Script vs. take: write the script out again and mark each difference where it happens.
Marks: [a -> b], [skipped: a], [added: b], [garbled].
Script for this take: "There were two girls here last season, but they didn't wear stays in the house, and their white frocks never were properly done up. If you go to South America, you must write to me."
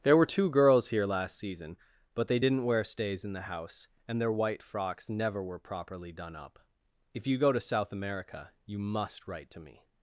"There were two girls here last season, but they didn't wear stays in the house, and their white frocks never were properly done up. If you go to South America, you must write to me."